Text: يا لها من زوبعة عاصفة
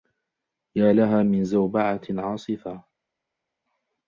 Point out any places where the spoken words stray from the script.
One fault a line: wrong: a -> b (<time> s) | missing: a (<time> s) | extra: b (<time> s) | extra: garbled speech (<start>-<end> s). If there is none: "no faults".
no faults